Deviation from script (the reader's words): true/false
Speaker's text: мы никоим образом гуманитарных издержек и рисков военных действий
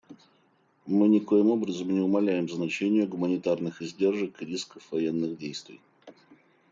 true